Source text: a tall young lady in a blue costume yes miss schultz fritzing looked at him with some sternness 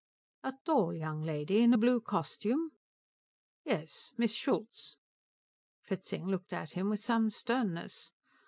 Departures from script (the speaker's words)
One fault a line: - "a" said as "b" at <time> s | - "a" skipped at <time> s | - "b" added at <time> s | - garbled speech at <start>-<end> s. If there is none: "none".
none